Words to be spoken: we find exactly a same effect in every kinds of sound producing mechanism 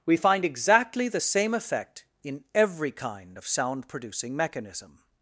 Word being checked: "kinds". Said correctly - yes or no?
no